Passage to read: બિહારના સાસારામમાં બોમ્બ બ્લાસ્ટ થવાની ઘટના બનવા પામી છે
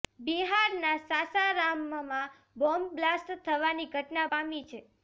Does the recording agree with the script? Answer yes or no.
no